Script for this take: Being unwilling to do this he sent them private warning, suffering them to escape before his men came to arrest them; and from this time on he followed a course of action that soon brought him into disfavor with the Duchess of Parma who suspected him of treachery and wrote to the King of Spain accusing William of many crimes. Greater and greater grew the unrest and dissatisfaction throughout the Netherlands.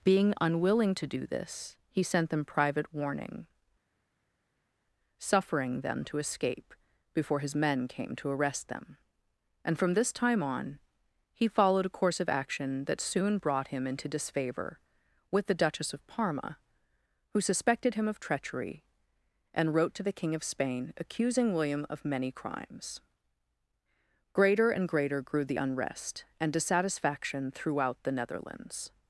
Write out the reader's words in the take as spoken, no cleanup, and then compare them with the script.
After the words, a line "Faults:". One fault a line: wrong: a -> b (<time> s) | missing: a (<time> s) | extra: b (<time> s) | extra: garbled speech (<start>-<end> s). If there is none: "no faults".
Being unwilling to do this he sent them private warning, suffering them to escape before his men came to arrest them; and from this time on he followed a course of action that soon brought him into disfavor with the Duchess of Parma who suspected him of treachery and wrote to the King of Spain accusing William of many crimes. Greater and greater grew the unrest and dissatisfaction throughout the Netherlands.
Faults:
no faults